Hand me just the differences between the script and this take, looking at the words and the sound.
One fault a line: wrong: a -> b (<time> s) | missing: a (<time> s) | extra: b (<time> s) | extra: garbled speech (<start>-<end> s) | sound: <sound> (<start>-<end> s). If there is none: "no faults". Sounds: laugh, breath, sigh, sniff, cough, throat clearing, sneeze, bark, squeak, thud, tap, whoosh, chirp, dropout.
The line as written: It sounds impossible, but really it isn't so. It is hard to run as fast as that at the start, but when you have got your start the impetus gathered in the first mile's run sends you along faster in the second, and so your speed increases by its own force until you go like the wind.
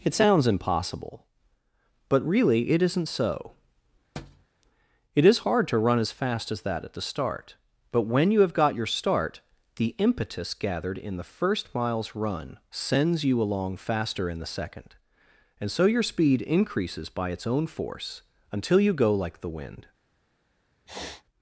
sound: thud (4.2-4.5 s)
sound: sniff (20.9-21.2 s)